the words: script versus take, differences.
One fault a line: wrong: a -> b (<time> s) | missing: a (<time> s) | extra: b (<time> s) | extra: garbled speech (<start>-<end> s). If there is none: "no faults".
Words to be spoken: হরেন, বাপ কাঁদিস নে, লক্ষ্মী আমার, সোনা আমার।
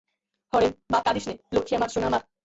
no faults